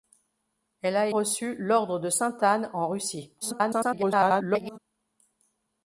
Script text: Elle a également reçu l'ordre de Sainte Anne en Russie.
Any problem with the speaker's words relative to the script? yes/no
yes